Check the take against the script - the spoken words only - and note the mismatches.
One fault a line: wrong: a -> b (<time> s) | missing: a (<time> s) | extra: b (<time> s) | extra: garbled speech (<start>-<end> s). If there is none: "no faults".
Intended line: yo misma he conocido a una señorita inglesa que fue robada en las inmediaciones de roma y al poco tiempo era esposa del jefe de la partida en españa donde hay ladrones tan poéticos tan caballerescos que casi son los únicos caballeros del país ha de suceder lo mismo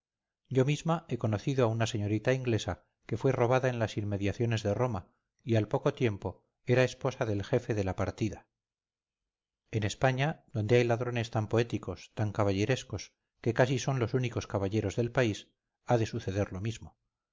no faults